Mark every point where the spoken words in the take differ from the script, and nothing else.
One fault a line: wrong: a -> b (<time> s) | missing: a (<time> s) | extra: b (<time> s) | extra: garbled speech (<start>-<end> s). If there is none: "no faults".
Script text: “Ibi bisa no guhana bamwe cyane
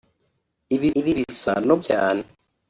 extra: ibi (1.0 s)
missing: guhana bamwe (1.8 s)